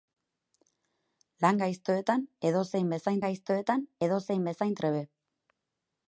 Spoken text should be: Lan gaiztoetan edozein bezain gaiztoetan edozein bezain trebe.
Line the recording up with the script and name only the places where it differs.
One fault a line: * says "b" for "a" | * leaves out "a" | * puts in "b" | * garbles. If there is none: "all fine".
all fine